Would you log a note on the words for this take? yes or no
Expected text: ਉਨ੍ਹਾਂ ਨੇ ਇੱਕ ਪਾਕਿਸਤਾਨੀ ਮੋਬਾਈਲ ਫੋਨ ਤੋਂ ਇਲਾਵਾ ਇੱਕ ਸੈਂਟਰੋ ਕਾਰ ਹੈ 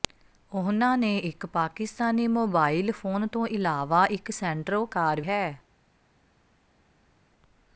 no